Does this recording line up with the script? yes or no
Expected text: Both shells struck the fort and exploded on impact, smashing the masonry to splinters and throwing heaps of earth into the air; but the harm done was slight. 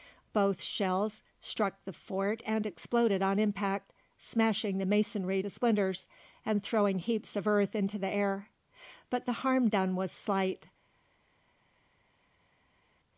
yes